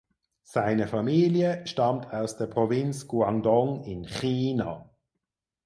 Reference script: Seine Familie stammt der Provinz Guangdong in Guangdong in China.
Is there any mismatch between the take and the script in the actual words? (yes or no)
yes